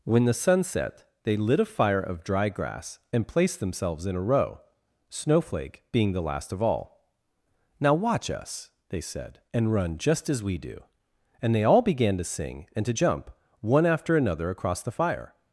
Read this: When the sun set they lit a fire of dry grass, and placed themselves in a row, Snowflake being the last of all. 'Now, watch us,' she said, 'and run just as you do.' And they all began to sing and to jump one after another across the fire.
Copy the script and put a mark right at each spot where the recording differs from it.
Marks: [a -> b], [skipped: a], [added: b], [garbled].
When the sun set they lit a fire of dry grass, and placed themselves in a row, Snowflake being the last of all. 'Now, watch us,' [she -> they] said, 'and run just as [you -> we] do.' And they all began to sing and to jump one after another across the fire.